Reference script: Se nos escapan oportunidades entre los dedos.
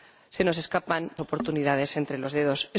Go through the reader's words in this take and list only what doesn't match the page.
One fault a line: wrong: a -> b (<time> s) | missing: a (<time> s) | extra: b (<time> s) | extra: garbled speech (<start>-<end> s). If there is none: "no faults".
no faults